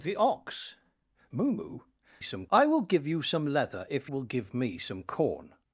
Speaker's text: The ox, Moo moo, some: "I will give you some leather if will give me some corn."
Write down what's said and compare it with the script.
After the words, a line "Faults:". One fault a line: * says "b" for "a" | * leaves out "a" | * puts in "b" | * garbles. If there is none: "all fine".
The ox, Moo moo, some: "I will give you some leather if will give me some corn."
Faults:
all fine